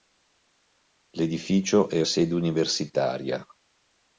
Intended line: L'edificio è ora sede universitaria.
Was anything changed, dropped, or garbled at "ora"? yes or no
yes